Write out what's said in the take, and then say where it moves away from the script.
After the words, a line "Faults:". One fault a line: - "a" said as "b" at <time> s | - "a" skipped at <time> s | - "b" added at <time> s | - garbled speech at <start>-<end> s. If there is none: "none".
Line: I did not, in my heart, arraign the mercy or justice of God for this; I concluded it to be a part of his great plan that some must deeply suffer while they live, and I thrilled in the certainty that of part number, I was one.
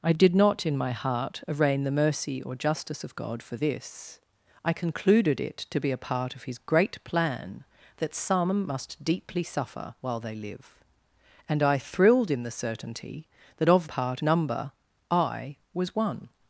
I did not, in my heart, arraign the mercy or justice of God for this; I concluded it to be a part of his great plan that some must deeply suffer while they live, and I thrilled in the certainty that of part number, I was one.
Faults:
none